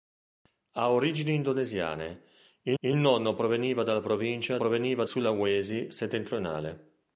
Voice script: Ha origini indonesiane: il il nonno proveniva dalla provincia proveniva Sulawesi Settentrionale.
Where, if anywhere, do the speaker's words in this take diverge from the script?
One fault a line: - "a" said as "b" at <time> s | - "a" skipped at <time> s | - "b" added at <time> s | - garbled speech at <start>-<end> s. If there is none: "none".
none